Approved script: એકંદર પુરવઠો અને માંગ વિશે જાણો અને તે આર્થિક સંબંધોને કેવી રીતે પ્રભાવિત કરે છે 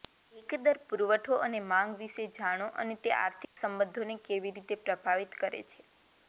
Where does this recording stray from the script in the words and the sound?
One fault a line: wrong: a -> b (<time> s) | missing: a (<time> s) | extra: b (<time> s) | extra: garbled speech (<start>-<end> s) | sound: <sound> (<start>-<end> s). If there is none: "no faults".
sound: dropout (3.4-3.6 s)